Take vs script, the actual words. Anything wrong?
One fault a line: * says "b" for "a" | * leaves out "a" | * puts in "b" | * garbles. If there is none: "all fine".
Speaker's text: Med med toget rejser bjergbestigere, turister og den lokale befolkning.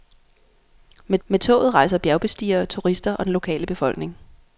all fine